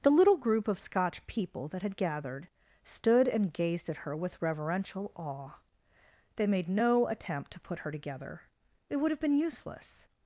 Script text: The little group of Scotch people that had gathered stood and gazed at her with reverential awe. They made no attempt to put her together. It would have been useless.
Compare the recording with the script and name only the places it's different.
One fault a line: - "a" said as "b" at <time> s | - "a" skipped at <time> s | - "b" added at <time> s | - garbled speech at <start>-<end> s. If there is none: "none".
none